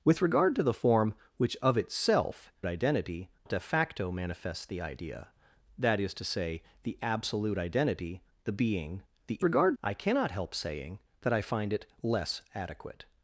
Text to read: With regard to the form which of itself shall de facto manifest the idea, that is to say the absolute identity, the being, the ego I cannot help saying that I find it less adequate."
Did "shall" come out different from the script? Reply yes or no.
yes